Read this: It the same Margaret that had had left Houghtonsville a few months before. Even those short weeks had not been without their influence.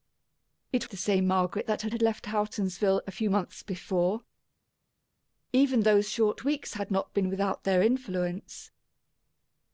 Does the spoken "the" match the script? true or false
true